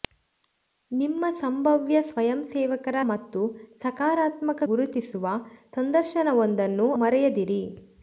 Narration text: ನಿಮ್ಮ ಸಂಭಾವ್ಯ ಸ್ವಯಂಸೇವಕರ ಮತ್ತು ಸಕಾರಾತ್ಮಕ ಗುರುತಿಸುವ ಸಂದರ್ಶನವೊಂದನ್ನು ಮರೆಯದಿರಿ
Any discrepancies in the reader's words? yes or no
no